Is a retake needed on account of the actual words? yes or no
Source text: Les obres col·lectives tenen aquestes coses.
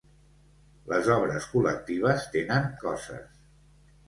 yes